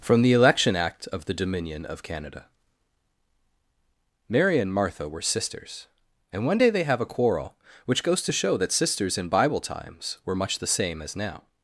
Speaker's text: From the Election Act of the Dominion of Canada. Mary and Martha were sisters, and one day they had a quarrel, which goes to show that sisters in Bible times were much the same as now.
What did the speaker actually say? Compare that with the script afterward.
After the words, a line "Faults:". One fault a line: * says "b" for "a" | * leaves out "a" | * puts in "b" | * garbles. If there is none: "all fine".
From the Election Act of the Dominion of Canada. Mary and Martha were sisters, and one day they have a quarrel, which goes to show that sisters in Bible times were much the same as now.
Faults:
* says "have" for "had"